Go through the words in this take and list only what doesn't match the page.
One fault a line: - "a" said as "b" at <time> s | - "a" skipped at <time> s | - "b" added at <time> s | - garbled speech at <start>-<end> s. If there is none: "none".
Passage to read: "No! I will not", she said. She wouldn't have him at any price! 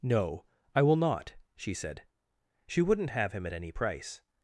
none